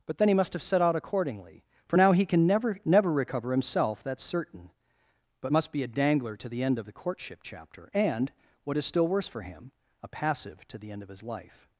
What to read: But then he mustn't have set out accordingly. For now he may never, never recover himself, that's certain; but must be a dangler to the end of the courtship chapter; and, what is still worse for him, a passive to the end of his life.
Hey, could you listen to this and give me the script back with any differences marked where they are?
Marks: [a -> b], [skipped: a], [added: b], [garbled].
But then he [mustn't -> must] have set out accordingly. For now he [may -> can] never, never recover himself, that's certain; but must be a dangler to the end of the courtship chapter; and, what is still worse for him, a passive to the end of his life.